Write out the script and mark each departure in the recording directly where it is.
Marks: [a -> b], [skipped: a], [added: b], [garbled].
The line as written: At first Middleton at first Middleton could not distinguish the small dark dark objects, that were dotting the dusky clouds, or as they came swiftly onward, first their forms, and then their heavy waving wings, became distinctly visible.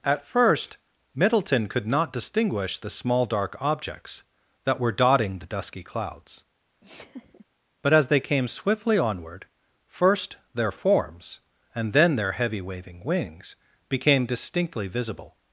At first Middleton [skipped: at first Middleton] could not distinguish the small dark [skipped: dark] objects, that were dotting the dusky clouds, [or -> but] as they came swiftly onward, first their forms, and then their heavy waving wings, became distinctly visible.